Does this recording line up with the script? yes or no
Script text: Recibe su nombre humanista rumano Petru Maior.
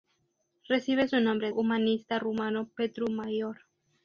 yes